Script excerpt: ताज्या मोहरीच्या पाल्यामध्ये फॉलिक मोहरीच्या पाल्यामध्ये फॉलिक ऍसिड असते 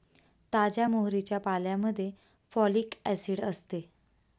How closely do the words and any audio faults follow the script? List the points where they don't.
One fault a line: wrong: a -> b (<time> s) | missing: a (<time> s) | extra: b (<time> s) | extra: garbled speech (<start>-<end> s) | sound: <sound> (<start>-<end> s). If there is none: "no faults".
missing: मोहरीच्या पाल्यामध्ये फॉलिक (2.9 s)